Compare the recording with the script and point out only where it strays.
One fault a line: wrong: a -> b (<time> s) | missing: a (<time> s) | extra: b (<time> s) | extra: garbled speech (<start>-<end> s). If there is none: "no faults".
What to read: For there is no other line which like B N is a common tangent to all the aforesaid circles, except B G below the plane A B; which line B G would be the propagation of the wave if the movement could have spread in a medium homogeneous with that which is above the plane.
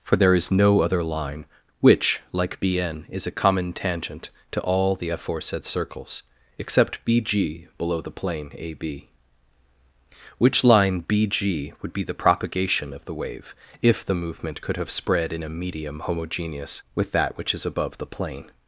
no faults